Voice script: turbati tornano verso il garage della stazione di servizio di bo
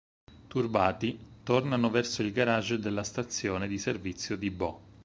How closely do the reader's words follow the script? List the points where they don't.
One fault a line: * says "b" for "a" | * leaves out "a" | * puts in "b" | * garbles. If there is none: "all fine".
all fine